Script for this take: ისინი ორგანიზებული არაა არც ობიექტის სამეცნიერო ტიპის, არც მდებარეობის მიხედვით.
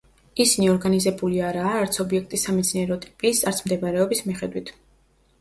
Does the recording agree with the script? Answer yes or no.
yes